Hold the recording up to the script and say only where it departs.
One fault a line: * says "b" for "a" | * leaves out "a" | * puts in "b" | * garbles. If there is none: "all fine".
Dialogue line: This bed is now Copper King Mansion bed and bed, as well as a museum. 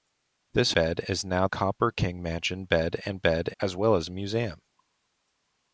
all fine